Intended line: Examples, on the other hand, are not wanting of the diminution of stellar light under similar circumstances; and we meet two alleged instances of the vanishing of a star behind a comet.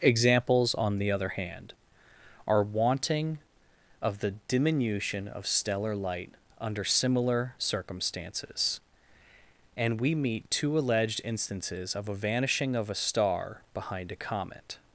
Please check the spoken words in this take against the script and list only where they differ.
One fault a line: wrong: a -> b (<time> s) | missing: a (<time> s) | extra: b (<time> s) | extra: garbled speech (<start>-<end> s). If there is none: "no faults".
missing: not (2.6 s)
wrong: the -> a (12.1 s)